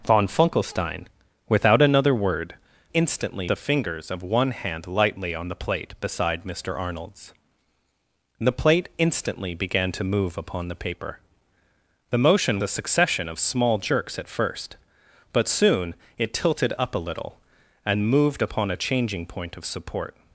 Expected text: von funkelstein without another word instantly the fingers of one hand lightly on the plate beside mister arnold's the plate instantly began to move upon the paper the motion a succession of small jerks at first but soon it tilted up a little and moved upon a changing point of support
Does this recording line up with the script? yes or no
yes